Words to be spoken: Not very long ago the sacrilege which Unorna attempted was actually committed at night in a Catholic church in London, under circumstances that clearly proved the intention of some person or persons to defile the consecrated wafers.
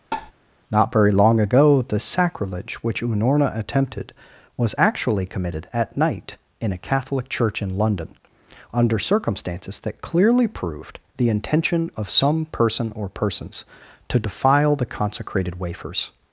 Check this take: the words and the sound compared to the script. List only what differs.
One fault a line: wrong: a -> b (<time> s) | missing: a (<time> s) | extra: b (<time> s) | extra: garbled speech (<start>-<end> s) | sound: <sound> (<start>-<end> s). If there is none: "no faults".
sound: tap (0.1-0.3 s)